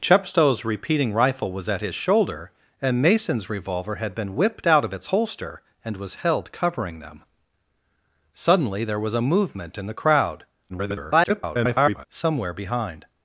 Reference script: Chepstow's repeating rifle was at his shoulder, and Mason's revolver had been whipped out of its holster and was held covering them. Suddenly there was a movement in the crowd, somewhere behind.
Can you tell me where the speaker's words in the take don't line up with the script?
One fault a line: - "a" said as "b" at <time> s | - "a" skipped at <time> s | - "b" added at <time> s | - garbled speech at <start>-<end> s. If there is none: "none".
- garbled speech at 10.7-12.1 s